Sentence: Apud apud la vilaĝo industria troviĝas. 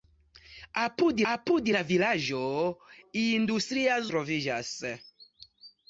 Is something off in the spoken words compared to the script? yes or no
no